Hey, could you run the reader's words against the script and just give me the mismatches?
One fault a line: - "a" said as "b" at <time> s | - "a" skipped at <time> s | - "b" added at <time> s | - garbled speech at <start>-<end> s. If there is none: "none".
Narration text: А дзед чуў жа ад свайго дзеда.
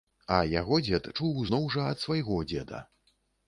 - "яго" added at 0.6 s
- "зноў" added at 1.5 s